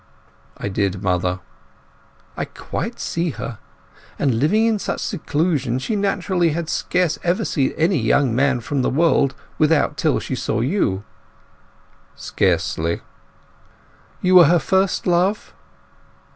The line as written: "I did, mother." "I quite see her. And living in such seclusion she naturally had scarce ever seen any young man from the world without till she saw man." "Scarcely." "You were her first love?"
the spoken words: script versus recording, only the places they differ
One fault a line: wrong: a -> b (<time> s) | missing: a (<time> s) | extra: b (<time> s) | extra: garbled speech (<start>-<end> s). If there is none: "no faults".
wrong: man -> you (10.6 s)